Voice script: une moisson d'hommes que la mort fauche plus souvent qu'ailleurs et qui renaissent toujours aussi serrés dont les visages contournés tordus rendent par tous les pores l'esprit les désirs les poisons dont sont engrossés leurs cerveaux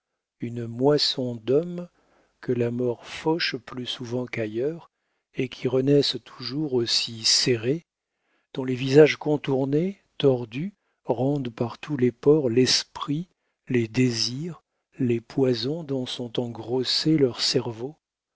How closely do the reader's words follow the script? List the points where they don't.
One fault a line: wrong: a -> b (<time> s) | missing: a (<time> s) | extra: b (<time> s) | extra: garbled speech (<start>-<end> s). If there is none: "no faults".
no faults